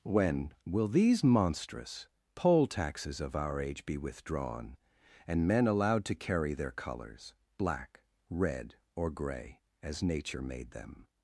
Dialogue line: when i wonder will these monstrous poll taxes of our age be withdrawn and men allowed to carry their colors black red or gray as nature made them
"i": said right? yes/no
no